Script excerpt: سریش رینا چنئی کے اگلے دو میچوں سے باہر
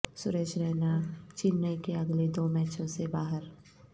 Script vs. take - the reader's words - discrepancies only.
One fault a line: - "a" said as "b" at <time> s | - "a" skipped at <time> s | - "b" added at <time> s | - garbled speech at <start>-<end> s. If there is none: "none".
none